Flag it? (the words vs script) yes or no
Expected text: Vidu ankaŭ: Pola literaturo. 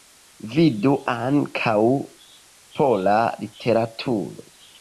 no